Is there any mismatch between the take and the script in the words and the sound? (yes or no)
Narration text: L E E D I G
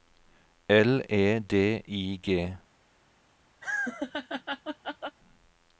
yes